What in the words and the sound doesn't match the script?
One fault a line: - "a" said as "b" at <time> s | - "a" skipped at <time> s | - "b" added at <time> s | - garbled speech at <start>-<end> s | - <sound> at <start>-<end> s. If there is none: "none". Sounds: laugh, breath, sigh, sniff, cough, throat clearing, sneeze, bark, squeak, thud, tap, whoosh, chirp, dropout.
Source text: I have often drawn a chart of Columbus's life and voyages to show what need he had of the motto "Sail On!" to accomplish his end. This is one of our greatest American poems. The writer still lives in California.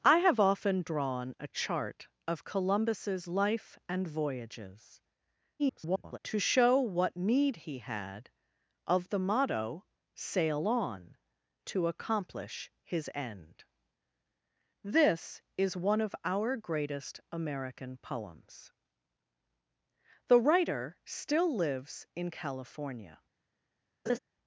- garbled speech at 5.6-6.2 s
- laugh at 24.1-24.2 s